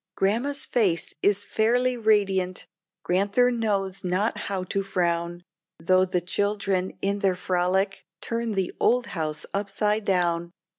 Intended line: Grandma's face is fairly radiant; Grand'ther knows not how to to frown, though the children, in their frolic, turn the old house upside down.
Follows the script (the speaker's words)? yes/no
no